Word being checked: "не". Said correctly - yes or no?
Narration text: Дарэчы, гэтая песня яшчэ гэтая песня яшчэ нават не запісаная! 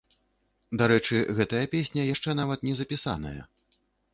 yes